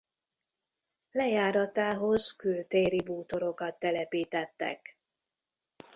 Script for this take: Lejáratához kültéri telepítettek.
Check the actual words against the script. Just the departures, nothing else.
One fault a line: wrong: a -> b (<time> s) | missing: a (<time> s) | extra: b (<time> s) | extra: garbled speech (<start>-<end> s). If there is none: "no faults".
extra: bútorokat (3.0 s)